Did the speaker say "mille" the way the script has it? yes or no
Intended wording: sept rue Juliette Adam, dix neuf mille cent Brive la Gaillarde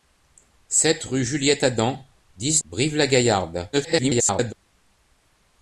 no